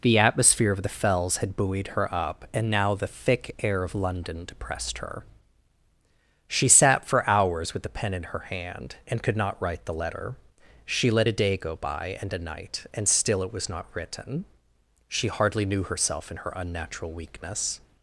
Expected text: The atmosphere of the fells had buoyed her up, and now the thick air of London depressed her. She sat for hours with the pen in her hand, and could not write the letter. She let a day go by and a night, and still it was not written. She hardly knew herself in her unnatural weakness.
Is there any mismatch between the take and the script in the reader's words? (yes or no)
no